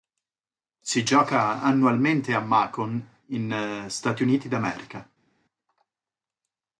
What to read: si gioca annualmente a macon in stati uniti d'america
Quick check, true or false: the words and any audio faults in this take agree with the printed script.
true